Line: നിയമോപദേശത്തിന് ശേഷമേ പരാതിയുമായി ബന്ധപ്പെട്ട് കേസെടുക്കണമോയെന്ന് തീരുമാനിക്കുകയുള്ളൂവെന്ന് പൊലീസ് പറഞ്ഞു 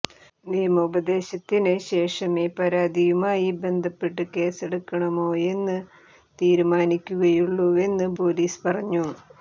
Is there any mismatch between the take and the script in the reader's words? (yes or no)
no